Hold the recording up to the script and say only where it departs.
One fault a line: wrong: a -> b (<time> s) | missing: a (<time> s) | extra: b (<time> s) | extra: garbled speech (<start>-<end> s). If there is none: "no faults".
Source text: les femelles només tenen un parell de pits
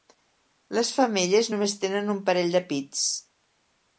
no faults